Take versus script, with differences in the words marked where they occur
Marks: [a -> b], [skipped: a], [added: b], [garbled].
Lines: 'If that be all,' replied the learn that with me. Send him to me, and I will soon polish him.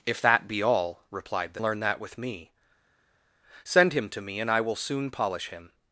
'If that be all,' replied the learn that with me. Send him to me, and I will soon polish him.